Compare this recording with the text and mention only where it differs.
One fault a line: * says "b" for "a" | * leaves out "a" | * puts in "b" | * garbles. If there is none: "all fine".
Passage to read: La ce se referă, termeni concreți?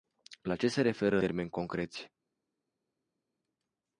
all fine